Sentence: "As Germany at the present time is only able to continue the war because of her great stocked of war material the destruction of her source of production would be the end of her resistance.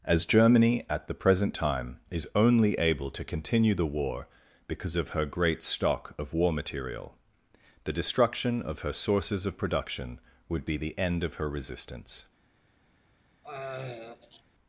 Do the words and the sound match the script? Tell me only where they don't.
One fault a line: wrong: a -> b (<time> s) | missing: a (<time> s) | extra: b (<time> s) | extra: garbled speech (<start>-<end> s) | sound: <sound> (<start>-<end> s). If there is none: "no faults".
wrong: stocked -> stock (5.6 s)
wrong: source -> sources (8.9 s)
sound: throat clearing (13.4-14.4 s)